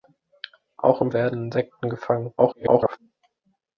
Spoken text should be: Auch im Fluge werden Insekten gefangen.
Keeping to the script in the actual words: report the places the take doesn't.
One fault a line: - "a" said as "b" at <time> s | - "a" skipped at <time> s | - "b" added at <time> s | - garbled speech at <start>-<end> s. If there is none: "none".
- "Fluge" skipped at 1.1 s
- garbled speech at 2.4-3.0 s